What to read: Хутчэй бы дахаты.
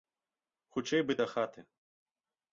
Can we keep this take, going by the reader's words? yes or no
yes